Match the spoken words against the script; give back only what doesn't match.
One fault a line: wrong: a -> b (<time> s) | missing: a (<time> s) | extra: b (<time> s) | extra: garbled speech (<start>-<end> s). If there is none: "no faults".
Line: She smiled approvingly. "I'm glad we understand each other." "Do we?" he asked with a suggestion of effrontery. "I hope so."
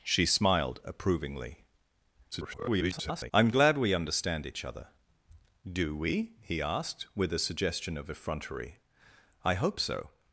extra: garbled speech (2.3-3.3 s)